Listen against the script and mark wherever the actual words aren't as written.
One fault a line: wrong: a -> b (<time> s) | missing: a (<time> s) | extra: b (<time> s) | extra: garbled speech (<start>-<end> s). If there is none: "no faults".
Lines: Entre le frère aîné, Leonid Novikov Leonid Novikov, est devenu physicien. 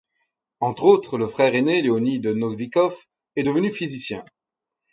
extra: autres (0.8 s)
missing: Leonid Novikov (3.0 s)